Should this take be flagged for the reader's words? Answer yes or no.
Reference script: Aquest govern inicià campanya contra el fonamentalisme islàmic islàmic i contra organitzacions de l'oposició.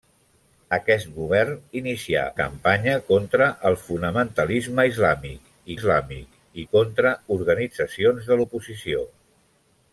no